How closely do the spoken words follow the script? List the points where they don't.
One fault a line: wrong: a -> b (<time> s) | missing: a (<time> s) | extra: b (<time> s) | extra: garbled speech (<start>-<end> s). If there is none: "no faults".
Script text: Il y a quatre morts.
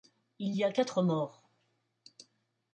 no faults